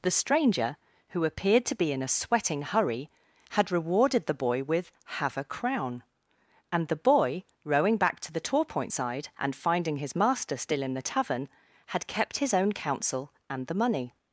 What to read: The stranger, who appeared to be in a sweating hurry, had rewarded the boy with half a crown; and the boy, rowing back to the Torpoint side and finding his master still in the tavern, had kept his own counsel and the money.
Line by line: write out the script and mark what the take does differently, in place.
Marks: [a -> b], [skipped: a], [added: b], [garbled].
The stranger, who appeared to be in a sweating hurry, had rewarded the boy with [half -> have] a crown; and the boy, rowing back to the Torpoint side and finding his master still in the tavern, had kept his own counsel and the money.